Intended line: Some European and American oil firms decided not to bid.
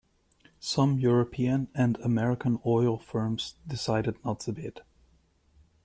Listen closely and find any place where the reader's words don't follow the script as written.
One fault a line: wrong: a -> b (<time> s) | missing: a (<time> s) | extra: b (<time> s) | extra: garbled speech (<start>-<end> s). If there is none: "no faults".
no faults